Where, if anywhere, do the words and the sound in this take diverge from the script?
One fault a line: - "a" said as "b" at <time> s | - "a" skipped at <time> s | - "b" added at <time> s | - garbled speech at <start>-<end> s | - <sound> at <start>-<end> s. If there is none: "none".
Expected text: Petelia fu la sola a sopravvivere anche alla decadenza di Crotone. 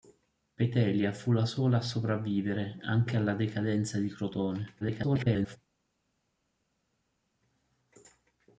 - garbled speech at 4.8-5.6 s